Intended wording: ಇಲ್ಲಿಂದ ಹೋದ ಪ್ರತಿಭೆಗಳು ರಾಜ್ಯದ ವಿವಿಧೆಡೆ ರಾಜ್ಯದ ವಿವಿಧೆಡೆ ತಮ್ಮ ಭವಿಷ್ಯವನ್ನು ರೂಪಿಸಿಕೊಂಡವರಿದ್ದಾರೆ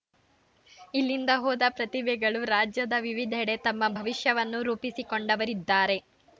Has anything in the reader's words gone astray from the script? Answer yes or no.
yes